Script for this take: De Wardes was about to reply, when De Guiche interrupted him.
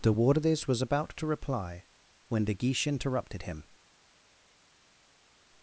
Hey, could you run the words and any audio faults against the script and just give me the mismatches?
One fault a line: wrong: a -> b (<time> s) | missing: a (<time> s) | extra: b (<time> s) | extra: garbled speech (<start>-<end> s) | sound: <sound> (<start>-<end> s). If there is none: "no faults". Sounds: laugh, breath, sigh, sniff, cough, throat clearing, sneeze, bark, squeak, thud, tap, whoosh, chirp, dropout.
no faults